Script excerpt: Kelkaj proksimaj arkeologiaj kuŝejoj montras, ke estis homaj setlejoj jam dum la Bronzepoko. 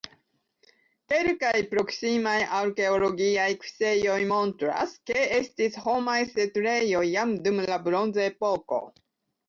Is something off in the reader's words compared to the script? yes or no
no